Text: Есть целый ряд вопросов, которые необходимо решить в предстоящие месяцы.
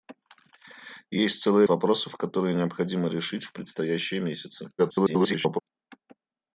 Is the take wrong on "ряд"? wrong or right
wrong